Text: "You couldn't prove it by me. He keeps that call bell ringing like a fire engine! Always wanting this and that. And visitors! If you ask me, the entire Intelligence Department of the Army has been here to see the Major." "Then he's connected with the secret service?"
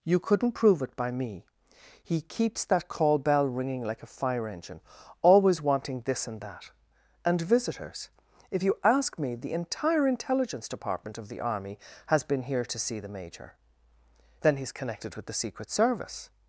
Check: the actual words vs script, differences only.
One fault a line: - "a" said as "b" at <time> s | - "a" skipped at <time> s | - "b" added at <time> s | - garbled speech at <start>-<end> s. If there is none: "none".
none